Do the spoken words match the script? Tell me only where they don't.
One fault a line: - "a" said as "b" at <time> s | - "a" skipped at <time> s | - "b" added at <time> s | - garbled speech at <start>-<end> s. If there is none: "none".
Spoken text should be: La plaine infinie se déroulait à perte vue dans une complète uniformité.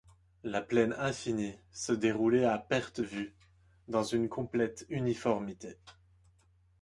none